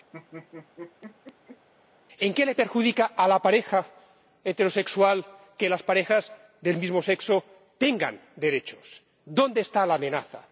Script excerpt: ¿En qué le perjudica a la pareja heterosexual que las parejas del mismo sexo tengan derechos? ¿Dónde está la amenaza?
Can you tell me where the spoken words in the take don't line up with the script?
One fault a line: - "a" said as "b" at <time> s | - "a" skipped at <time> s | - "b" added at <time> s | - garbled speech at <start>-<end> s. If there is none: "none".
none